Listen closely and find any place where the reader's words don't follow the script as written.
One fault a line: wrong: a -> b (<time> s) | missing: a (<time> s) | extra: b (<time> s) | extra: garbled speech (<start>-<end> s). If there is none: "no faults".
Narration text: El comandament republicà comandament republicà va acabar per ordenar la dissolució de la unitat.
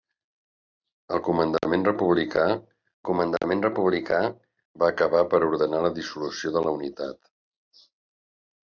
no faults